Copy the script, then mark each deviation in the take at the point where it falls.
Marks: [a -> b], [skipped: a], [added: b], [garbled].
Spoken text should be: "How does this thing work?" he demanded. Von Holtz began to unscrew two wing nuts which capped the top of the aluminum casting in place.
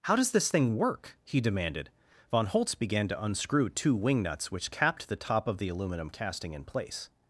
"How does this thing work?" he demanded. Von Holtz began to unscrew two wing nuts which capped the top of the aluminum casting in place.